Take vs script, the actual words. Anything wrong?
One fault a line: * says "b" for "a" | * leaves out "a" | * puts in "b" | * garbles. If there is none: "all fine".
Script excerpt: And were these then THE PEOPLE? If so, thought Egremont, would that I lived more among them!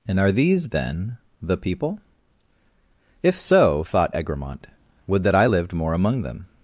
* says "are" for "were"